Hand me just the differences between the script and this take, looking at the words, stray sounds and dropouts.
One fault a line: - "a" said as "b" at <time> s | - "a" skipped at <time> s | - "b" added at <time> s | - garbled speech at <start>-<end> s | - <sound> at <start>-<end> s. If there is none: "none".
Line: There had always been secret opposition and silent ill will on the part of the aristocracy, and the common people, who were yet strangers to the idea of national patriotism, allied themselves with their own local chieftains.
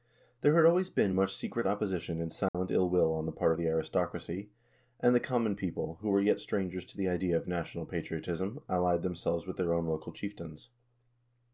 - "much" added at 1.1 s
- dropout at 2.5-2.5 s